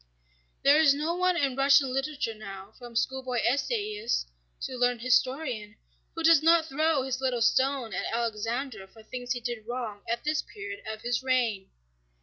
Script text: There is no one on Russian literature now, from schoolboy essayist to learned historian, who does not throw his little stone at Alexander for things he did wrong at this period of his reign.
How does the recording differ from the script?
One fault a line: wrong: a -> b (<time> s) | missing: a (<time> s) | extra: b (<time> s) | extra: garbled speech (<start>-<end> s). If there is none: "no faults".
wrong: on -> in (1.4 s)